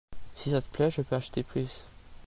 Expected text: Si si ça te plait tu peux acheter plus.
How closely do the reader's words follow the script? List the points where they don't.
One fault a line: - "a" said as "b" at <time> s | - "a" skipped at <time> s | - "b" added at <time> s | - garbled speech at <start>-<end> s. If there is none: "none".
- "si" skipped at 0.5 s
- "tu" said as "je" at 0.9 s